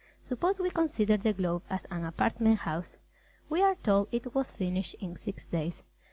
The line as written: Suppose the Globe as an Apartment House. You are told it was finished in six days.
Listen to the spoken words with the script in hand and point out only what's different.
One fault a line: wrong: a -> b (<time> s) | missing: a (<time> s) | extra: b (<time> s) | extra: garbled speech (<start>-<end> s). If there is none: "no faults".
extra: we consider (0.6 s)
wrong: You -> We (3.5 s)